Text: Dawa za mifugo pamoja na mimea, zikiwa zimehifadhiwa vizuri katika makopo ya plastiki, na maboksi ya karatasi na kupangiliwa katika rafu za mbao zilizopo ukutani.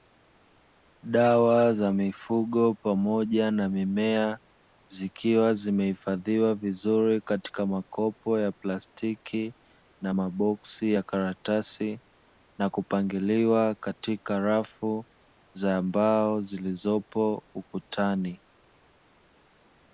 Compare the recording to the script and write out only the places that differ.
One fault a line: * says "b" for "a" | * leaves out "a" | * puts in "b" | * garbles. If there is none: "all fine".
all fine